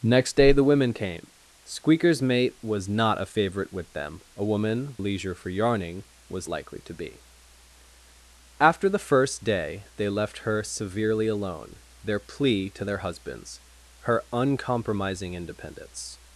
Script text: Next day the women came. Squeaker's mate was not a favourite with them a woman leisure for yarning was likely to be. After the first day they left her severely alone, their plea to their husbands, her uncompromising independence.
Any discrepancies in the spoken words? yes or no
no